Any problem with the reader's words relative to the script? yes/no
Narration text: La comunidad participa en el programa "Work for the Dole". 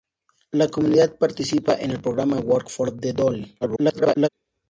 yes